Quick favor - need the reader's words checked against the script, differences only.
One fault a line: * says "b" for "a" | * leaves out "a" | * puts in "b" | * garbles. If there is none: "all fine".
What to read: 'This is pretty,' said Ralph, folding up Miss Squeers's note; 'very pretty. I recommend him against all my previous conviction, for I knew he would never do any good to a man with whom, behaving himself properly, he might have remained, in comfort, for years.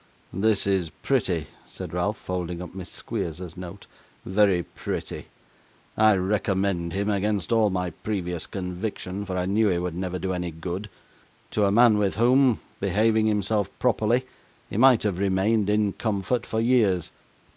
all fine